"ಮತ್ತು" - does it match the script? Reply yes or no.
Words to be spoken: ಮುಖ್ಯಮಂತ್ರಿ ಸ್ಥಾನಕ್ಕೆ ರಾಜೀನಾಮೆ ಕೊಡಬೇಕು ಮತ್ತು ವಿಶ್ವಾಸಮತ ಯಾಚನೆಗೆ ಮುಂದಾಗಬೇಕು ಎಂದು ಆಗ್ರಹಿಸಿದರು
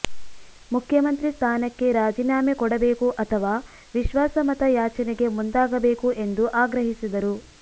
no